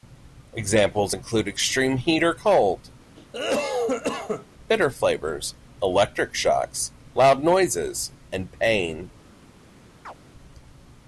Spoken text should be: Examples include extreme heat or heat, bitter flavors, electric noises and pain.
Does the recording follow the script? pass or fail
fail